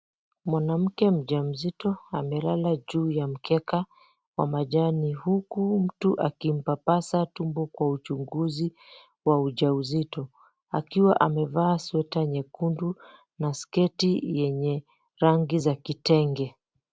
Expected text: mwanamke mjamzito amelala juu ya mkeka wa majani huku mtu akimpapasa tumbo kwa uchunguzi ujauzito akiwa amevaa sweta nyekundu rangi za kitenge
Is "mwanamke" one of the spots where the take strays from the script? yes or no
no